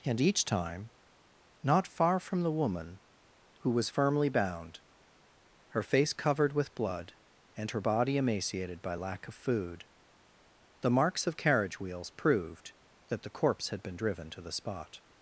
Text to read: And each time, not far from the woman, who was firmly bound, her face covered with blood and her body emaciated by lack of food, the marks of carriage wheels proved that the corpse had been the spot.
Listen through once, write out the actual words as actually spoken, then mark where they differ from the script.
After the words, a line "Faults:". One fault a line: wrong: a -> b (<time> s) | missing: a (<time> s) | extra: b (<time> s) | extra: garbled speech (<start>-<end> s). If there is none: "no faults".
And each time, not far from the woman, who was firmly bound, her face covered with blood and her body emaciated by lack of food, the marks of carriage wheels proved that the corpse had been driven to the spot.
Faults:
extra: driven to (14.0 s)